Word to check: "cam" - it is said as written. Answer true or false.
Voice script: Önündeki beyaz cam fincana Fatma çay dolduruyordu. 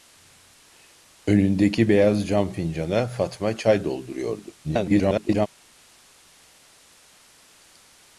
true